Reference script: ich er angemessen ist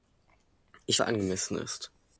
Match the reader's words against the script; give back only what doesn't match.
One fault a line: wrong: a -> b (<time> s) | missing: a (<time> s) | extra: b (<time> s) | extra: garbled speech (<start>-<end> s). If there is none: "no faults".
no faults